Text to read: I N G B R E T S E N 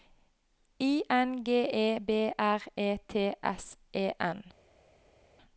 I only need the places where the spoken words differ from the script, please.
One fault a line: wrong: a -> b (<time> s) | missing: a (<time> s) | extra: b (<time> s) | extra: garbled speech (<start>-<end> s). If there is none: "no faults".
extra: E (1.7 s)